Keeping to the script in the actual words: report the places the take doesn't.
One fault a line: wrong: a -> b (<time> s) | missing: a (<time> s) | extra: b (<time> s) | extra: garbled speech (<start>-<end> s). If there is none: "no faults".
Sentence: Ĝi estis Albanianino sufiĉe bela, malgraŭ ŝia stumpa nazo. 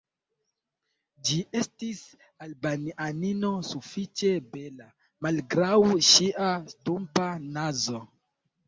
no faults